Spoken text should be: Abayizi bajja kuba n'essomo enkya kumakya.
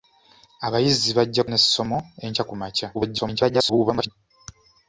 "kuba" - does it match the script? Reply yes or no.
no